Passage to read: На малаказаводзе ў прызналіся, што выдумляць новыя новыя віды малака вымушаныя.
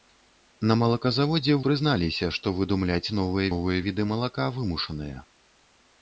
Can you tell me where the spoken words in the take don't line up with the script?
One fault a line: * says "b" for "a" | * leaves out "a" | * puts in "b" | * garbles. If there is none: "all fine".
all fine